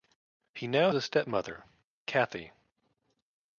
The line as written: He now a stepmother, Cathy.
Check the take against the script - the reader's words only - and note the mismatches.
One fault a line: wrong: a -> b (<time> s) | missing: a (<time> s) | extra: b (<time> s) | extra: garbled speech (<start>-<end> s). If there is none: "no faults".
no faults